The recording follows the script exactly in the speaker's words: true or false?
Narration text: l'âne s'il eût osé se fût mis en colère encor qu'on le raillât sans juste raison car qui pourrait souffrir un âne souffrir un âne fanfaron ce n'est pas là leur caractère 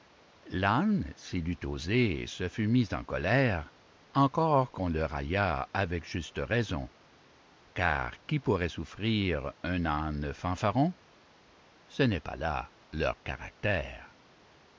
false